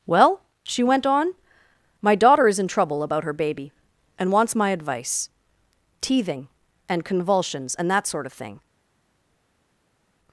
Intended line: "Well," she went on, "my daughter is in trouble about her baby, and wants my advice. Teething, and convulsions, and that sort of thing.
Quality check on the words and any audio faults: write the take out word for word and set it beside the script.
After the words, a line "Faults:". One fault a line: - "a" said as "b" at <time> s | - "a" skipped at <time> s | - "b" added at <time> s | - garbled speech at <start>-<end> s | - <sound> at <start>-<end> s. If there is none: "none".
"Well," she went on, "my daughter is in trouble about her baby, and wants my advice. Teething, and convulsions, and that sort of thing.
Faults:
none